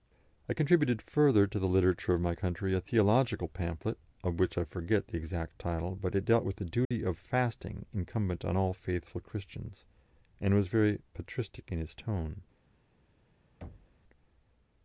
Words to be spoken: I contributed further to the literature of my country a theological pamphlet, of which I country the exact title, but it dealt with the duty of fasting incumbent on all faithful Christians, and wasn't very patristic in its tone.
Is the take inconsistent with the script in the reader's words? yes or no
yes